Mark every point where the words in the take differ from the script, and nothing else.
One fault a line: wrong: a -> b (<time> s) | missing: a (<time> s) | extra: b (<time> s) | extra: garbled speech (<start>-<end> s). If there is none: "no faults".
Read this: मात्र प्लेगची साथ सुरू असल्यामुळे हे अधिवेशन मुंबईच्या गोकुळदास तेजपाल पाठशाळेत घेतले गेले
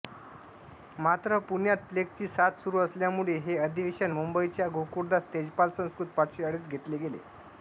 extra: पुण्यात (1.5 s)
extra: संस्कृत (5.8 s)